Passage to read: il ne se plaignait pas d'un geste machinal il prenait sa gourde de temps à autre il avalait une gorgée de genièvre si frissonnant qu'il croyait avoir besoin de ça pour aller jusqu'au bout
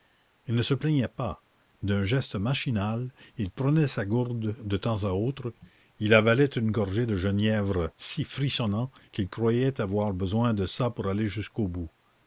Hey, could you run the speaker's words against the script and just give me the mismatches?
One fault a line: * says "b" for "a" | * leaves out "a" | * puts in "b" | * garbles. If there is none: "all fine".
all fine